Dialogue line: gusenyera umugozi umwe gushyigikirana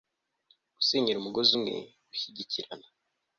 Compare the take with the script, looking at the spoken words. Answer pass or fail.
pass